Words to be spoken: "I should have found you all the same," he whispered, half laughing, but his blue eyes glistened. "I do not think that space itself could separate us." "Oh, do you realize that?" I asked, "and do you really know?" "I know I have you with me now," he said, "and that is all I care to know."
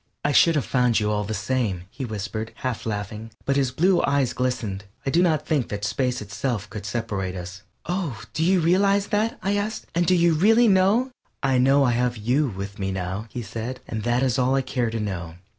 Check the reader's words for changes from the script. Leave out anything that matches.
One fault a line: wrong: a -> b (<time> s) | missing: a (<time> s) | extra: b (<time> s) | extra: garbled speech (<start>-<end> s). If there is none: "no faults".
no faults